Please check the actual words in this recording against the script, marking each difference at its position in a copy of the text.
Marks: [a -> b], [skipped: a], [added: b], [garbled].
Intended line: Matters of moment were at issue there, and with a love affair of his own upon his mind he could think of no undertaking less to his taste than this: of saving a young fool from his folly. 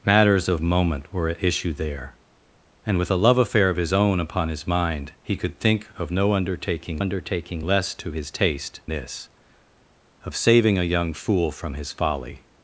Matters of moment were at issue there, and with a love affair of his own upon his mind he could think of no undertaking [added: undertaking] less to his taste [skipped: than] this: of saving a young fool from his folly.